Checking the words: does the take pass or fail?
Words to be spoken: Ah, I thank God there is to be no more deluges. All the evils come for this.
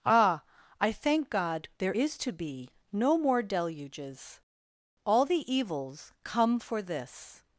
pass